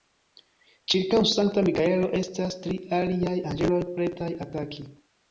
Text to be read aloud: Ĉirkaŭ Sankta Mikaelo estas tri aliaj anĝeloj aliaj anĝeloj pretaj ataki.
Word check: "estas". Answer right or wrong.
right